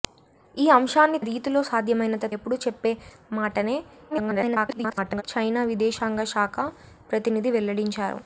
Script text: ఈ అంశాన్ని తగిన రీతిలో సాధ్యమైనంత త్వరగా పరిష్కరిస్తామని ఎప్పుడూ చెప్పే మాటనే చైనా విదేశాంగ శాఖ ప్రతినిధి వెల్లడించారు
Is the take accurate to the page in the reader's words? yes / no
no